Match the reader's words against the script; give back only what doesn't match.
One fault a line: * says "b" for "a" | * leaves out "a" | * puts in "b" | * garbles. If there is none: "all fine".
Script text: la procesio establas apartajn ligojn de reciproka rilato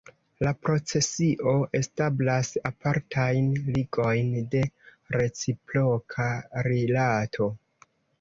all fine